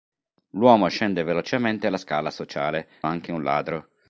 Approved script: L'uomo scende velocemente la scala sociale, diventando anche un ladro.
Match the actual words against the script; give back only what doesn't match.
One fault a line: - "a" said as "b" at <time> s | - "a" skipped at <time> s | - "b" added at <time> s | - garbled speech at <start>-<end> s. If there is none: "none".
- "diventando" skipped at 2.9 s